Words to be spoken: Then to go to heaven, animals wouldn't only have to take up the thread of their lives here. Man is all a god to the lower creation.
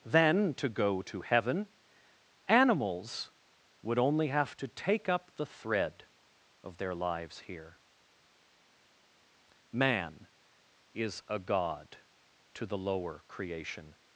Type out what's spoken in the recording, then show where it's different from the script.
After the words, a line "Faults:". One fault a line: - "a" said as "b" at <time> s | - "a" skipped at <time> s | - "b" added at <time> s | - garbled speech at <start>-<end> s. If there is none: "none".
Then to go to heaven, animals would only have to take up the thread of their lives here. Man is a god to the lower creation.
Faults:
- "wouldn't" said as "would" at 3.8 s
- "all" skipped at 11.2 s